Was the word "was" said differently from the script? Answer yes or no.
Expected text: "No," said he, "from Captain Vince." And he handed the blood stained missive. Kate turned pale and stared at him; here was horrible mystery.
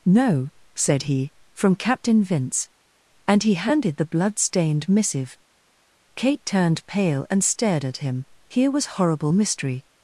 no